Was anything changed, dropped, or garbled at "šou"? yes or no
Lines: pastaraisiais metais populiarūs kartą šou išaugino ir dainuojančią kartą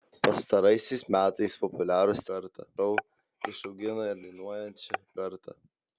no